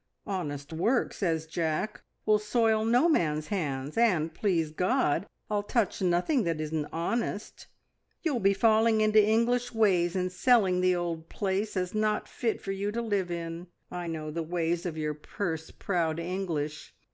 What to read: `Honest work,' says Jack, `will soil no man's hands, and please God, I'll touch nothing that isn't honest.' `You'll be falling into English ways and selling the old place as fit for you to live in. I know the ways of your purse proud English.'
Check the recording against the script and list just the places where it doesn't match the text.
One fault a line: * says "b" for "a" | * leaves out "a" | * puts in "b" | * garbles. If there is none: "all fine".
* puts in "not"